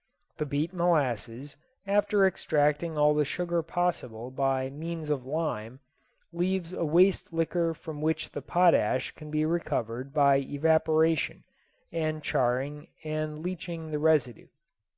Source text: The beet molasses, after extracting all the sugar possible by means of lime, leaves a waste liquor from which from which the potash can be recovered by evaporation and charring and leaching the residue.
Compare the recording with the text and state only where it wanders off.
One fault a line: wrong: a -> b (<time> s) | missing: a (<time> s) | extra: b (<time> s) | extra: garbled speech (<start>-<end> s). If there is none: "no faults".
missing: from which (8.3 s)